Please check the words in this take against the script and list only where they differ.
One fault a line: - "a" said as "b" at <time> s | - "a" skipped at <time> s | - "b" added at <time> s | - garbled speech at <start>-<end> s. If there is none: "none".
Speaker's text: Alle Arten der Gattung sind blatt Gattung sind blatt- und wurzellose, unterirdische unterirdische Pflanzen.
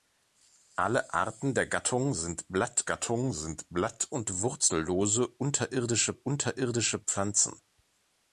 none